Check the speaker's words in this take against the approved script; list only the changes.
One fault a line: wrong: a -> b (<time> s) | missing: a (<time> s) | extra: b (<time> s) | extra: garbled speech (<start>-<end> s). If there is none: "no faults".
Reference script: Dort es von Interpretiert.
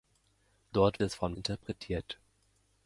no faults